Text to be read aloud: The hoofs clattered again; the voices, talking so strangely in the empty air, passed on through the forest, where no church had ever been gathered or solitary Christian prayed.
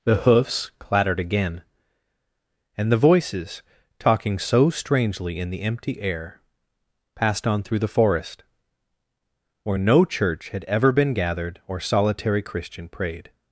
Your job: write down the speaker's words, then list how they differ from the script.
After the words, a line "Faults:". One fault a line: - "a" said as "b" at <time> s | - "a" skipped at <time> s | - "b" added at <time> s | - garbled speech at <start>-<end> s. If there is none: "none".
The hoofs clattered again; and the voices, talking so strangely in the empty air, passed on through the forest, where no church had ever been gathered or solitary Christian prayed.
Faults:
- "and" added at 2.8 s